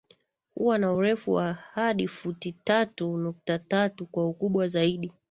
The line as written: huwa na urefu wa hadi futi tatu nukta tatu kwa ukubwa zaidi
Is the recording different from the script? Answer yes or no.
no